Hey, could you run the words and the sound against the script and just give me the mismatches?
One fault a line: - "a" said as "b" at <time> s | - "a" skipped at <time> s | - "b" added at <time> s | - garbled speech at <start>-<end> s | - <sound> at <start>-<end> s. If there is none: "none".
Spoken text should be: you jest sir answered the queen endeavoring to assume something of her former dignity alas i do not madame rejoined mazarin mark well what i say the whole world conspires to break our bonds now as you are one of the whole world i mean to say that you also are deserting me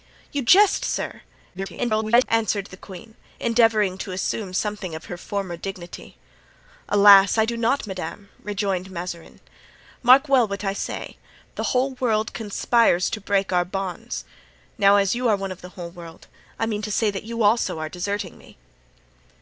- garbled speech at 1.5-2.3 s